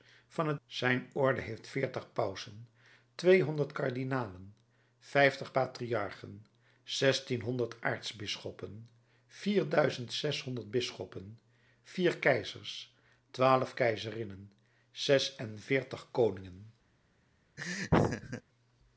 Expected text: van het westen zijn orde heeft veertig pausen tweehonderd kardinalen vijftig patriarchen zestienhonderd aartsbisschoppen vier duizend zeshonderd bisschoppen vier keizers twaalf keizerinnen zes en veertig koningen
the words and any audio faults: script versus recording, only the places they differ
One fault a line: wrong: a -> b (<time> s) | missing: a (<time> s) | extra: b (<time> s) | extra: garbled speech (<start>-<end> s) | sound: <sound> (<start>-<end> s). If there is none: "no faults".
missing: westen (0.6 s)
sound: laugh (17.6-18.4 s)